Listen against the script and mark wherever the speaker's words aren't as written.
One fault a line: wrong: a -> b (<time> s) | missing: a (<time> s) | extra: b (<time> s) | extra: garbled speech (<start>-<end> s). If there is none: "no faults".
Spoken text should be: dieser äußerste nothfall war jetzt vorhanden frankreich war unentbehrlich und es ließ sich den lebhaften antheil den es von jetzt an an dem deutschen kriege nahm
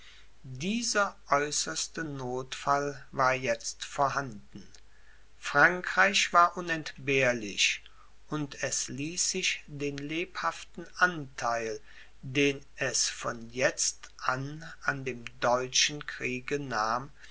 no faults